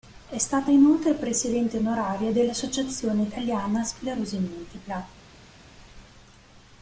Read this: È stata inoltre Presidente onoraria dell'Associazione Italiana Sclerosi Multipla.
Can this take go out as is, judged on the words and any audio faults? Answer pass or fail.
pass